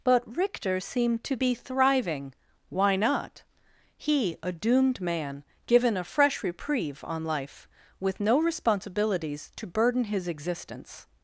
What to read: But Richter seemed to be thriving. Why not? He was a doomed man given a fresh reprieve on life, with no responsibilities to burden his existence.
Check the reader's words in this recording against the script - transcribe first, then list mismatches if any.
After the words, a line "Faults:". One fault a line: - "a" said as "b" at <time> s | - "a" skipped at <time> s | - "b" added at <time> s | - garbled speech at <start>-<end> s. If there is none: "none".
But Richter seemed to be thriving. Why not? He a doomed man given a fresh reprieve on life, with no responsibilities to burden his existence.
Faults:
- "was" skipped at 4.4 s